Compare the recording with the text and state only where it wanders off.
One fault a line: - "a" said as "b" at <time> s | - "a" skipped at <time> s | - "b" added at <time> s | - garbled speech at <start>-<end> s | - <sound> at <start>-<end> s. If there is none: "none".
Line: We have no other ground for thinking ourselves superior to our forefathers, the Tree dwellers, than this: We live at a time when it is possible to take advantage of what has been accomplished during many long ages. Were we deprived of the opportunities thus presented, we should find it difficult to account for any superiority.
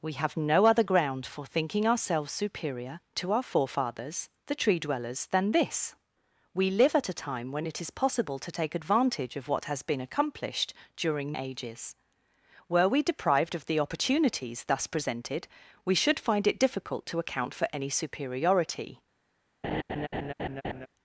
- "many long" skipped at 11.4 s
- laugh at 19.6-20.9 s